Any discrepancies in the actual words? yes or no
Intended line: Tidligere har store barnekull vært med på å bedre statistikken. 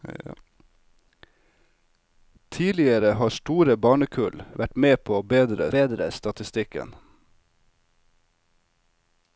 yes